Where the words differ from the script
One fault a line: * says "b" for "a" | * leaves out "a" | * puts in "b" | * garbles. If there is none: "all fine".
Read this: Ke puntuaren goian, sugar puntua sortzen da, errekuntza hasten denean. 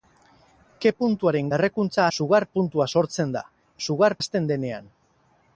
* says "errekuntza" for "goian"
* says "sugar" for "errekuntza"